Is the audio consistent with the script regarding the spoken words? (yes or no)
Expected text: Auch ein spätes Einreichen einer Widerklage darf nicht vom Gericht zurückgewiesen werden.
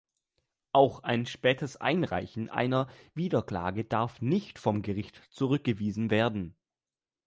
yes